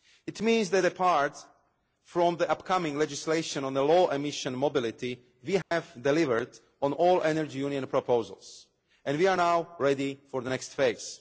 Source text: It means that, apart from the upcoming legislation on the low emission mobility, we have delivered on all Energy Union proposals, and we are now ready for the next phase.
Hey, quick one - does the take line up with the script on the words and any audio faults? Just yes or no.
no